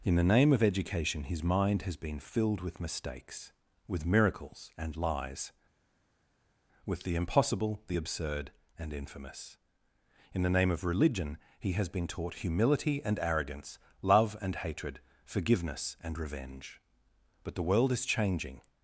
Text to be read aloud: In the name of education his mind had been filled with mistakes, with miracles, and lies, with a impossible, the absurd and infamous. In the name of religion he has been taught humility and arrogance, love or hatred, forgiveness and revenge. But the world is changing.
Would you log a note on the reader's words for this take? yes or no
yes